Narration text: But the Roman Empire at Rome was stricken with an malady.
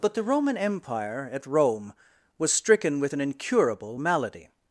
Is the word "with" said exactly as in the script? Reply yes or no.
yes